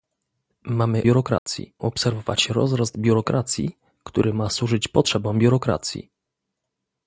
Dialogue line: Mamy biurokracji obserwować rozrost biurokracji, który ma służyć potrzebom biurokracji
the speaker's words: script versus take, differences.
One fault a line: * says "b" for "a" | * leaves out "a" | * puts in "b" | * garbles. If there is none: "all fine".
all fine